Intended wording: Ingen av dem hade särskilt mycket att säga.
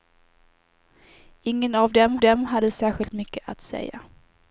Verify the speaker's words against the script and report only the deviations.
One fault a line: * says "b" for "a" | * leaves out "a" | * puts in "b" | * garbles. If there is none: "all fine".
* puts in "dem"